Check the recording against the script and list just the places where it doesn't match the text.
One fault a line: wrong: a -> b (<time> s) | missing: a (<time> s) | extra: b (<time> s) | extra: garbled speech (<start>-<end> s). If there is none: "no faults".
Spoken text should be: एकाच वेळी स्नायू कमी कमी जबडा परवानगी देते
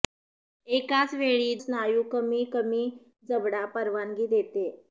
no faults